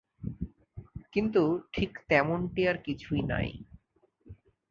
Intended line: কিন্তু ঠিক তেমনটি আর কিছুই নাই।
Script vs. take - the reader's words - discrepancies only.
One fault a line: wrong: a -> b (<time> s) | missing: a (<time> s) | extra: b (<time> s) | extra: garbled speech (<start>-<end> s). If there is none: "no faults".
no faults